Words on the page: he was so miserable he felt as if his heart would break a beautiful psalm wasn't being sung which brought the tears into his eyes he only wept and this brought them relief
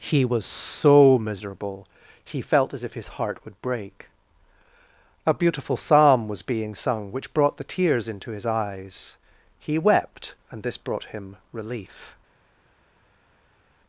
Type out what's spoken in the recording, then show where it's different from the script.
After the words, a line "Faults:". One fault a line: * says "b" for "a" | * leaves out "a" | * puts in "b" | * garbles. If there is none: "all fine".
he was so miserable he felt as if his heart would break a beautiful psalm was being sung which brought the tears into his eyes he wept and this brought him relief
Faults:
* says "was" for "wasn't"
* leaves out "only"
* says "him" for "them"